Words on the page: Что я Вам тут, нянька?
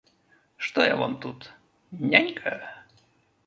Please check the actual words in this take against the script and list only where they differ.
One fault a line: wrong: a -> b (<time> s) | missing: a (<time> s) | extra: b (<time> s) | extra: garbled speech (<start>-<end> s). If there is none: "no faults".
no faults